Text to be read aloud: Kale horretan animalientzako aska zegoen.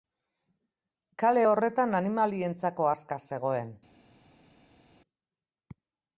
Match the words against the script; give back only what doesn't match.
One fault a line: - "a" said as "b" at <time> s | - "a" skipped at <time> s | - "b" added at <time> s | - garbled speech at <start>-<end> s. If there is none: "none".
none